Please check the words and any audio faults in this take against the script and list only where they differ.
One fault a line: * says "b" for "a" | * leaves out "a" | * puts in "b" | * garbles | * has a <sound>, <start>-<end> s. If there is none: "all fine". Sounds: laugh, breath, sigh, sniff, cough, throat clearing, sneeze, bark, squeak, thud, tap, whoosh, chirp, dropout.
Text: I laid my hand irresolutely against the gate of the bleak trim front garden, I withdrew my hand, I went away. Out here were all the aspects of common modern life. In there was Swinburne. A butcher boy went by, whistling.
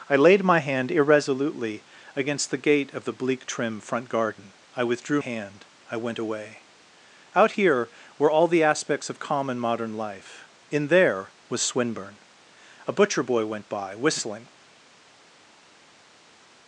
* leaves out "my"